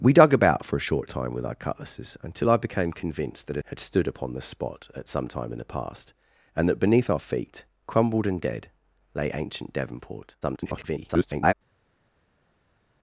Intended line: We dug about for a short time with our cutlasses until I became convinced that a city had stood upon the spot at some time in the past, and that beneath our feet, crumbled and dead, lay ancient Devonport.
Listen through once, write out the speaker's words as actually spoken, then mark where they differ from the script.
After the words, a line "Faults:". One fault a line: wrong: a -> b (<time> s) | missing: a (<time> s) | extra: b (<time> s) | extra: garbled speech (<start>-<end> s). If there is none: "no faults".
We dug about for a short time with our cutlasses until I became convinced that a had stood upon the spot at some time in the past, and that beneath our feet, crumbled and dead, lay ancient Devonport. [garbled]
Faults:
missing: city (3.6 s)
extra: garbled speech (10.4-11.5 s)